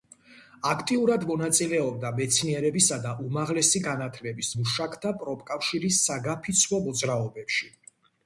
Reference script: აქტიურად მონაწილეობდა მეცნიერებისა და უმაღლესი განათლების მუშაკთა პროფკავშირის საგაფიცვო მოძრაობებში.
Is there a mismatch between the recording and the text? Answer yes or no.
no